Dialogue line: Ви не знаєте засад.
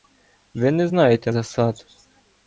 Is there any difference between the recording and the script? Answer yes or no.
no